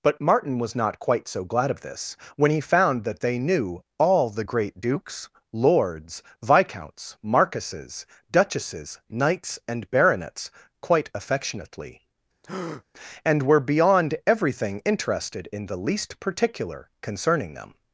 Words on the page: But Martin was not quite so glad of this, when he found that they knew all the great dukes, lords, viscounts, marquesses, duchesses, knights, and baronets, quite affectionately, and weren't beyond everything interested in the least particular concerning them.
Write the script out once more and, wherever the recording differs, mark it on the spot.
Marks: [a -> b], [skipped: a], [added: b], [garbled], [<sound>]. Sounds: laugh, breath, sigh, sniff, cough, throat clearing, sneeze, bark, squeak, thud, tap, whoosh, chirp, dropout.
But Martin was not quite so glad of this, when he found that they knew all the great dukes, lords, viscounts, marquesses, duchesses, knights, and baronets, quite affectionately, [breath] and [weren't -> were] beyond everything interested in the least particular concerning them.